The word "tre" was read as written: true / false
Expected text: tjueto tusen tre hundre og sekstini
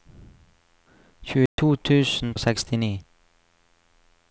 false